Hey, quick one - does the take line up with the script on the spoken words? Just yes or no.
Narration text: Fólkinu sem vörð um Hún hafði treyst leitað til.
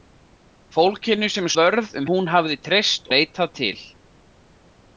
yes